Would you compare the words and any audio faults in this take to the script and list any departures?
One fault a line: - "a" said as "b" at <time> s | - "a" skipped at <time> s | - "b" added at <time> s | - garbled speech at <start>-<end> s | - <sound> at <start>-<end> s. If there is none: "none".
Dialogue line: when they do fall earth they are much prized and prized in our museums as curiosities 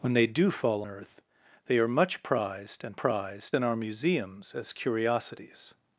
none